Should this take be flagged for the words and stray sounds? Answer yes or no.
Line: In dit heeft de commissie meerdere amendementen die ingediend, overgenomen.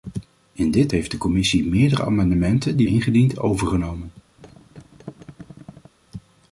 yes